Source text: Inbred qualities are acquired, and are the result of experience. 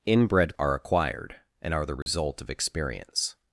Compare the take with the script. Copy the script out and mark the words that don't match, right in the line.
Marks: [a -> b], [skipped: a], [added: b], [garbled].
Inbred [skipped: qualities] are acquired, and are the result of experience.